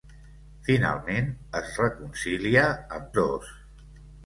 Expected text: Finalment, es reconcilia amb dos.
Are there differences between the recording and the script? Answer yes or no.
no